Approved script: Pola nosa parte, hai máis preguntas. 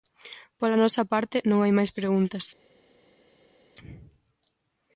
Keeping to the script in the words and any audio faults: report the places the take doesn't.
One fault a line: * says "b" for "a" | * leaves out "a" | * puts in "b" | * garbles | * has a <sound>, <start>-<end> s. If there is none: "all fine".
* puts in "non"